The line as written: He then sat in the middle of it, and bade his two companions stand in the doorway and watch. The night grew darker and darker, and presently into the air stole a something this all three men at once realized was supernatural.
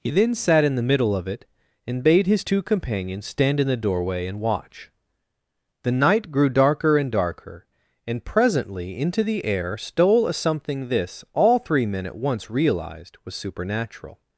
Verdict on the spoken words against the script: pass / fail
pass